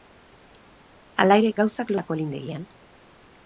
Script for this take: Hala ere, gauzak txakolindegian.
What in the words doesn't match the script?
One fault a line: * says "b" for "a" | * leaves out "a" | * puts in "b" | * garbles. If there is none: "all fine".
all fine